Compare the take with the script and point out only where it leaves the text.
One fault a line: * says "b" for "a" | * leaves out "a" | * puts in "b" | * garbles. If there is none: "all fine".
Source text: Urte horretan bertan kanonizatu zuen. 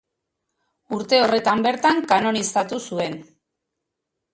all fine